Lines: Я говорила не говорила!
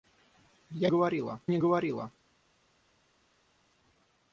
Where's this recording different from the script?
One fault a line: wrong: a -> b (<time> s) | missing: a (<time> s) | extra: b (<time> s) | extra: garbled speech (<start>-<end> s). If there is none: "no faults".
no faults